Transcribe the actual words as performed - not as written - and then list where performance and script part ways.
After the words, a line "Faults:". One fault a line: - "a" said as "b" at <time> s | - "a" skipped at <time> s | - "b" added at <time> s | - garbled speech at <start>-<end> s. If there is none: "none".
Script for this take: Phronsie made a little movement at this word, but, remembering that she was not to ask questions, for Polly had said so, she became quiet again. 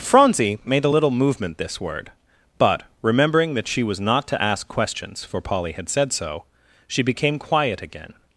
Phronsie made a little movement this word, but, remembering that she was not to ask questions, for Polly had said so, she became quiet again.
Faults:
- "at" skipped at 1.6 s